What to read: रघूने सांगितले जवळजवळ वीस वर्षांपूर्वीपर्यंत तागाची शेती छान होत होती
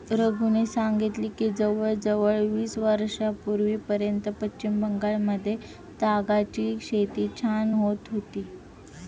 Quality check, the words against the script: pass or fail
fail